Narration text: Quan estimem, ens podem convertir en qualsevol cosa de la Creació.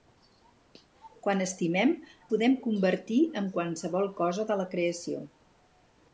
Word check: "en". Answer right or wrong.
right